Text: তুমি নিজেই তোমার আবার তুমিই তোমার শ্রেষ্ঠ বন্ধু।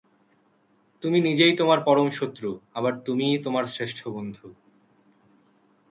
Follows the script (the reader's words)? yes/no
no